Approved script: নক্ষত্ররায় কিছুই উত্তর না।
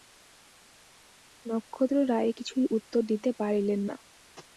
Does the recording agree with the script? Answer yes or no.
no